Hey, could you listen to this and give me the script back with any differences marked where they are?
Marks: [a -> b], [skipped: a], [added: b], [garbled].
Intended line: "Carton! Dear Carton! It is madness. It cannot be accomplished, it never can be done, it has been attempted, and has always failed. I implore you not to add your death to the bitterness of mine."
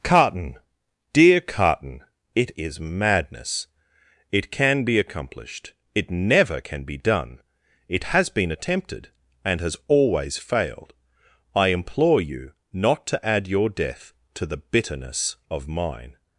"Carton! Dear Carton! It is madness. It [cannot -> can] be accomplished, it never can be done, it has been attempted, and has always failed. I implore you not to add your death to the bitterness of mine."